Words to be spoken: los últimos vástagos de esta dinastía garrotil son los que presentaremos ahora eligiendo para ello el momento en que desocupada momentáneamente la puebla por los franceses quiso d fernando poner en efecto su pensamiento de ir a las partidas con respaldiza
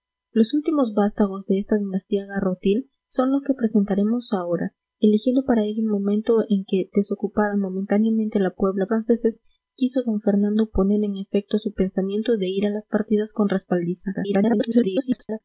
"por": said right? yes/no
no